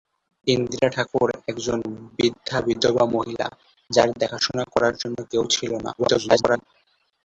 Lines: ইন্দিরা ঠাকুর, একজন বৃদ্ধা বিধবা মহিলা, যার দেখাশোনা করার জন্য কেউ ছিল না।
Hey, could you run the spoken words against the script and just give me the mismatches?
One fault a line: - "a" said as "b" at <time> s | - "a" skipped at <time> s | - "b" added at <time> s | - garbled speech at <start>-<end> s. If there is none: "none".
- garbled speech at 6.0-6.7 s